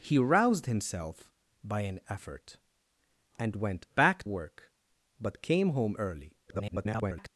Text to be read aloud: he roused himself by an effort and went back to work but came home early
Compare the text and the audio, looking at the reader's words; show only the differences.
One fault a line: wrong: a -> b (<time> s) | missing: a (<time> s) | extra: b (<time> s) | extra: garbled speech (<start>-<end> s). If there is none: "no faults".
missing: to (4.2 s)
extra: garbled speech (6.5-7.3 s)